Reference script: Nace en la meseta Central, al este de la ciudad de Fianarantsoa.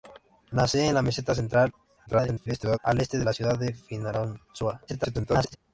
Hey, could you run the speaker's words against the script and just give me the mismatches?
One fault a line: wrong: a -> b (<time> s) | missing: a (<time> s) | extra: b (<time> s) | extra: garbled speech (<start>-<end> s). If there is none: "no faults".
extra: garbled speech (2.1-2.8 s)
extra: garbled speech (4.9-5.6 s)